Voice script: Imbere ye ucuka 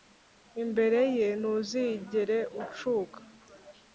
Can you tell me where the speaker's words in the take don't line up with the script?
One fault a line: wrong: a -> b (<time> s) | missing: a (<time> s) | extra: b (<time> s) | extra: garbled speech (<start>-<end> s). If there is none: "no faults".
extra: ntuzigere (1.4 s)